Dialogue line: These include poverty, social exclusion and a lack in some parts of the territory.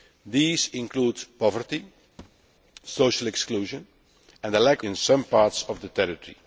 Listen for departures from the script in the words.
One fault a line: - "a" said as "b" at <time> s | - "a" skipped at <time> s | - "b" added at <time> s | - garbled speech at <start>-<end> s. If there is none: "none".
none